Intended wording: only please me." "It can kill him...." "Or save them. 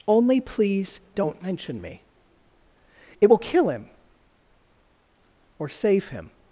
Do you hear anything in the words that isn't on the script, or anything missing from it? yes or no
yes